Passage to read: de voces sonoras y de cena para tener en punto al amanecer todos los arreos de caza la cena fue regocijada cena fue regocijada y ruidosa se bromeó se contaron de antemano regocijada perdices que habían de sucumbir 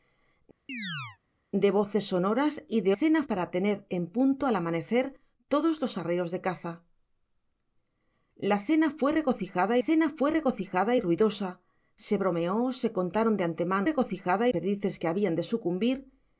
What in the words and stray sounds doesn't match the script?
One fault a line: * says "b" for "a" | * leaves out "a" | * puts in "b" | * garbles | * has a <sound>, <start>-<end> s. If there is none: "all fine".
* has a chirp, 0.7-1.2 s